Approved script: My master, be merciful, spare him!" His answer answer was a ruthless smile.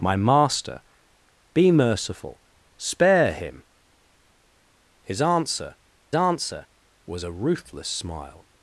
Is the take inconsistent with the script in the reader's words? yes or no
no